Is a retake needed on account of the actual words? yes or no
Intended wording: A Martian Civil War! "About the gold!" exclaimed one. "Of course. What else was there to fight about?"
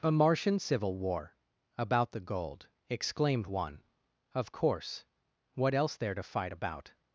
yes